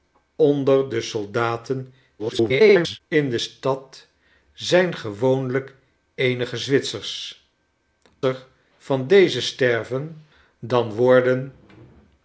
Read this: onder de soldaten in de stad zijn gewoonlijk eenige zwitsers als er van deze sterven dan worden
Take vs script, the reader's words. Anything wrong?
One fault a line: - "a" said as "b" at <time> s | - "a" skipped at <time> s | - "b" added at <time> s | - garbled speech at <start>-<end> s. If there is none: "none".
- garbled speech at 2.2-3.0 s
- "als" skipped at 7.5 s